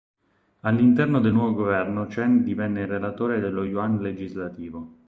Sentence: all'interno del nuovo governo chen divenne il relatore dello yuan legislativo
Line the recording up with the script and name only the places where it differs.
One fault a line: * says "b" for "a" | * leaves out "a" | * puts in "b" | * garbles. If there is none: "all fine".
all fine